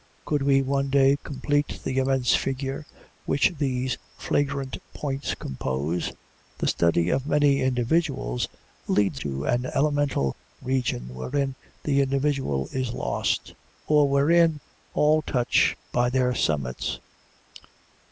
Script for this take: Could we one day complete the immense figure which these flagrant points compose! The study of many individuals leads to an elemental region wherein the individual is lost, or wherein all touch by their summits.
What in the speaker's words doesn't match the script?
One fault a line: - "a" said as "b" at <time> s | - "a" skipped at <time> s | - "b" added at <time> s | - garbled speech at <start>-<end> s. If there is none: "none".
none